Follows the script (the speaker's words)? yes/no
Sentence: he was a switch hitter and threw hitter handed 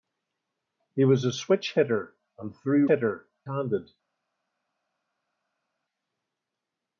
yes